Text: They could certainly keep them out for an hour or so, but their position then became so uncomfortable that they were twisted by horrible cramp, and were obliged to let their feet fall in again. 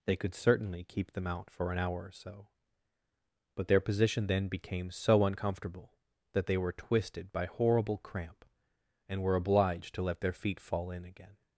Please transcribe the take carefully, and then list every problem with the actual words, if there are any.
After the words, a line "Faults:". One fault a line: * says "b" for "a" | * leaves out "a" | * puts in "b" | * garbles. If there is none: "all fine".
They could certainly keep them out for an hour or so, but their position then became so uncomfortable that they were twisted by horrible cramp, and were obliged to let their feet fall in again.
Faults:
all fine